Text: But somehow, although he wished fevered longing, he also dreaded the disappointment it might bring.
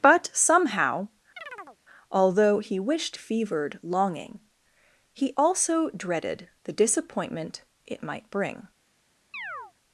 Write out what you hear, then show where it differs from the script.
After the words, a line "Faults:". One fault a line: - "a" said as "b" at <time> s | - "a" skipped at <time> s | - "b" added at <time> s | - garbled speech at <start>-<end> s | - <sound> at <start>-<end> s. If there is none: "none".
But somehow, although he wished fevered longing, he also dreaded the disappointment it might bring.
Faults:
- chirp at 1.4-1.8 s
- chirp at 9.3-9.7 s